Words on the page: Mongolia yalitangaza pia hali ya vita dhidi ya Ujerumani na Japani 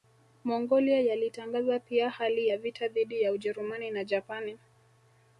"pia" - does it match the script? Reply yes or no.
yes